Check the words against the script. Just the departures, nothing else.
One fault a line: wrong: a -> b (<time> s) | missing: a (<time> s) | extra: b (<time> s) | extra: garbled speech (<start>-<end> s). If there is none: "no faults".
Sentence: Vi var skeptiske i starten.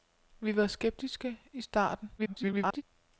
extra: garbled speech (2.2-2.8 s)